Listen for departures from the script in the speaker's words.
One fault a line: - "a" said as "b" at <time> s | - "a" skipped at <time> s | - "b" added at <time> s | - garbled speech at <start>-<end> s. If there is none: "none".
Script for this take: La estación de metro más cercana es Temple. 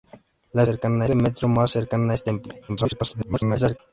- "estación" said as "cercana" at 0.6 s
- garbled speech at 2.7-3.8 s